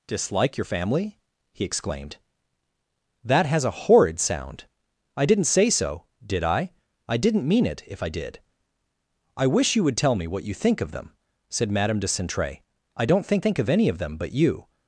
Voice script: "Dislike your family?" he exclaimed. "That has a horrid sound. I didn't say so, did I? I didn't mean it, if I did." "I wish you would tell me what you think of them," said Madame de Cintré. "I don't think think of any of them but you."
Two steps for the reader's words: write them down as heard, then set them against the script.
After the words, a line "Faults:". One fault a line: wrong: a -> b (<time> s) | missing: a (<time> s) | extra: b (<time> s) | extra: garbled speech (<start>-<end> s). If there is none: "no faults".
"Dislike your family?" he exclaimed. "That has a horrid sound. I didn't say so, did I? I didn't mean it, if I did." "I wish you would tell me what you think of them," said Madame de Cintré. "I don't think think of any of them but you."
Faults:
no faults